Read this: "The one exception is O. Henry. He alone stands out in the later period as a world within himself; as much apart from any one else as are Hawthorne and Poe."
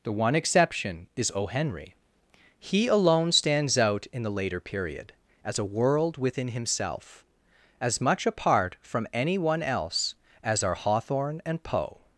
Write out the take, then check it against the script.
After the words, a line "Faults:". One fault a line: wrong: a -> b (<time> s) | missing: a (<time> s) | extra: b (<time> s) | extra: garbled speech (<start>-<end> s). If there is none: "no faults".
"The one exception is O. Henry. He alone stands out in the later period as a world within himself; as much apart from any one else as are Hawthorne and Poe."
Faults:
no faults